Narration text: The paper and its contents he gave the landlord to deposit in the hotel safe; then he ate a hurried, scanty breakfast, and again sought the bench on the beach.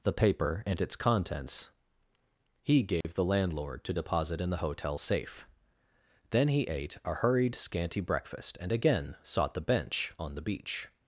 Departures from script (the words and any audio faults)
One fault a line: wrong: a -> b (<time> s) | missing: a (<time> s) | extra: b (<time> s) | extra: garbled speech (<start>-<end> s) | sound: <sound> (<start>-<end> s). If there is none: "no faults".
sound: dropout (3.0-3.0 s)